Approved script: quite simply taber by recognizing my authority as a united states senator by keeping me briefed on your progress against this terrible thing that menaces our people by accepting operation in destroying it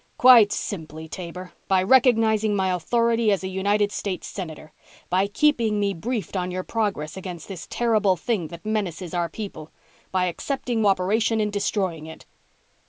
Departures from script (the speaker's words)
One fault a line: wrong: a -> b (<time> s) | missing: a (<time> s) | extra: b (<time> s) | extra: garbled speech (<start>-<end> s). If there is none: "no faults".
no faults